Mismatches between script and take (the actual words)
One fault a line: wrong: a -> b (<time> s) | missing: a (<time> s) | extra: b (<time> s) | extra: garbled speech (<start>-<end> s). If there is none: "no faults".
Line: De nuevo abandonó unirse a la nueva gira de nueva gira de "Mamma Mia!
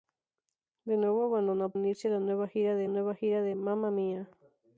no faults